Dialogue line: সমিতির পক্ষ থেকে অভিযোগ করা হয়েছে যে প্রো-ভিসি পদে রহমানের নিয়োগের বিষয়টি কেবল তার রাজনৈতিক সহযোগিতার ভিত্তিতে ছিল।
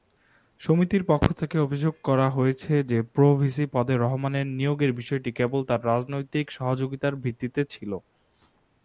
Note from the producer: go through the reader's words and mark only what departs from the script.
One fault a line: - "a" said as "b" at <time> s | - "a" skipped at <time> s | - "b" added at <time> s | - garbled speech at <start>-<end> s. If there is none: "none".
none